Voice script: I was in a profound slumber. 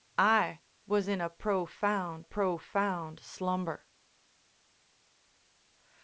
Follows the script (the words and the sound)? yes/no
no